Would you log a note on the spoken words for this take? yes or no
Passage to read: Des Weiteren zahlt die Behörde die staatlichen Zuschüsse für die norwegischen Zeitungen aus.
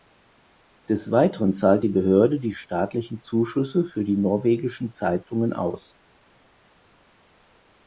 no